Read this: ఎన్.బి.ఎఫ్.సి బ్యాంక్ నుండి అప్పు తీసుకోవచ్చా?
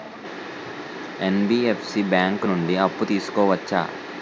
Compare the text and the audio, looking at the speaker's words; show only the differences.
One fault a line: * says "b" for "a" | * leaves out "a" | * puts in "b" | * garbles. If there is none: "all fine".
all fine